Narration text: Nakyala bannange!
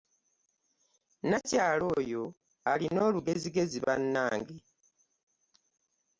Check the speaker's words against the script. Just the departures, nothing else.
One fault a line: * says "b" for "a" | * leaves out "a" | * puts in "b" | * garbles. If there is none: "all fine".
* puts in "oyo alina olugezigezi"